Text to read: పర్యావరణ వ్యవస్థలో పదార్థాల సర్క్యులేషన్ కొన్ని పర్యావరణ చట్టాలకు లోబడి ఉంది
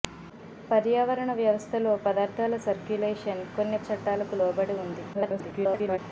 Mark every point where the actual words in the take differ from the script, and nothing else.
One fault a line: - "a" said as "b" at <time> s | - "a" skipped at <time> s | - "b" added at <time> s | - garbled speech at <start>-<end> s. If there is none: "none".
- "పర్యావరణ" skipped at 3.8 s
- garbled speech at 5.1-6.0 s